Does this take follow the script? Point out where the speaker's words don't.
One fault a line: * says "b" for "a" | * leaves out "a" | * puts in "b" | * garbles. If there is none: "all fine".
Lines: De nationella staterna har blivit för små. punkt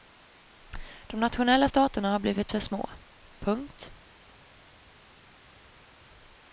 all fine